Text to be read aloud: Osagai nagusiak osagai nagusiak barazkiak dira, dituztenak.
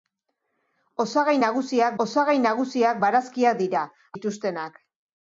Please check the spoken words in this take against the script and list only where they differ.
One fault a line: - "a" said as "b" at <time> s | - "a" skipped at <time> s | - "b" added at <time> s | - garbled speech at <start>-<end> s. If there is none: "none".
none